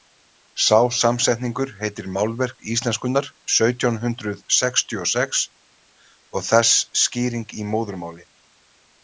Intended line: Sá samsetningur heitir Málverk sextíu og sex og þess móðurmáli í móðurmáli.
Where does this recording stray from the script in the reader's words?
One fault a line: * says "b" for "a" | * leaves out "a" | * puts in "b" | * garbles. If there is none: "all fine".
* puts in "íslenskunnar sautján hundrað"
* says "skýring" for "móðurmáli"